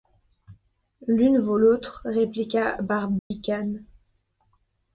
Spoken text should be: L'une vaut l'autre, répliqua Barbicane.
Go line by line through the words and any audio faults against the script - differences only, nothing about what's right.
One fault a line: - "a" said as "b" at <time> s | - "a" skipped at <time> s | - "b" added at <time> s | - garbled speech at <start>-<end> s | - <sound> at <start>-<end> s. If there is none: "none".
- dropout at 3.2-3.3 s